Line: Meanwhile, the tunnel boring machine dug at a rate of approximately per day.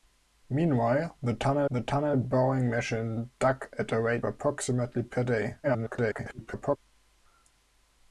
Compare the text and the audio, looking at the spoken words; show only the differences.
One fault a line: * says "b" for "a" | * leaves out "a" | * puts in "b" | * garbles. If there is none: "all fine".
* puts in "the tunnel"
* leaves out "of"
* garbles